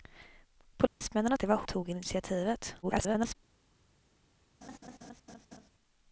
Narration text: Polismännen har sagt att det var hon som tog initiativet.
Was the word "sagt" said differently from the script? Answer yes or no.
yes